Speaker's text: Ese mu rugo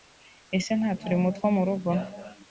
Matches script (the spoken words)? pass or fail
fail